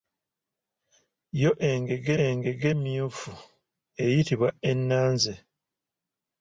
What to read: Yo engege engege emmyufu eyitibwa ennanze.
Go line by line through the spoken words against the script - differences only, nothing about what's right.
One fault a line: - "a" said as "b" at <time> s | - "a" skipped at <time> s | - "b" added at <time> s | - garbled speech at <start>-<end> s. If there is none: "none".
none